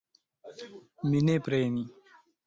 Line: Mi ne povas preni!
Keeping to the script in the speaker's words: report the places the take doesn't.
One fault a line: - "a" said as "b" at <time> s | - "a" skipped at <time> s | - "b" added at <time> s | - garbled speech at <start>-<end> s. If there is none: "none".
- "povas" skipped at 1.4 s